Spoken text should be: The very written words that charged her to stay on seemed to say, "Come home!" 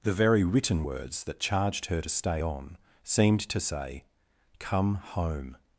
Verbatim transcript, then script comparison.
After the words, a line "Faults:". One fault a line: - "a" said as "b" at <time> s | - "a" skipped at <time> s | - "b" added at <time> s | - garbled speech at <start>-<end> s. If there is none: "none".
The very written words that charged her to stay on seemed to say, "Come home!"
Faults:
none